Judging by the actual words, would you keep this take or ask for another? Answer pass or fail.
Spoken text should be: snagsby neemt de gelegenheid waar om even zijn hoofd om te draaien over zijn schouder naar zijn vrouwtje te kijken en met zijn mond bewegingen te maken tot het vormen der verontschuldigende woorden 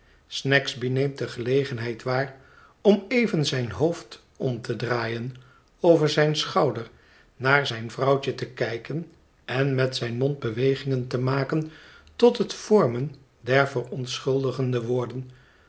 pass